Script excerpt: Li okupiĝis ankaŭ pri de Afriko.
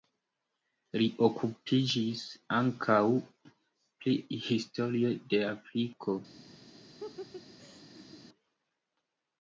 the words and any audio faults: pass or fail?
fail